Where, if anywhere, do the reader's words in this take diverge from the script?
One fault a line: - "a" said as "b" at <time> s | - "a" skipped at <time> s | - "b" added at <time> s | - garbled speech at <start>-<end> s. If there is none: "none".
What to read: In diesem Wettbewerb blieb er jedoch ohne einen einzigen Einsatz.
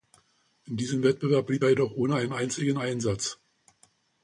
none